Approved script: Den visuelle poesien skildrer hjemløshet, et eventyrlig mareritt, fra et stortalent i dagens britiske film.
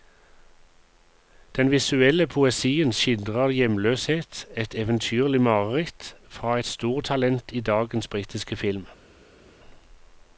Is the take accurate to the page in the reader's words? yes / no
yes